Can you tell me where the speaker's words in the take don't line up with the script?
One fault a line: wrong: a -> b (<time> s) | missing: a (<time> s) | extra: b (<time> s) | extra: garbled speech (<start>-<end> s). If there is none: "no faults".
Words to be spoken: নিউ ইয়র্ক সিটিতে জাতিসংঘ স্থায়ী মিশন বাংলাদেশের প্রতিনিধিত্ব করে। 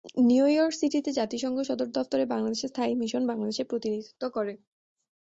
extra: সদর দফতরে বাংলাদেশের (1.6 s)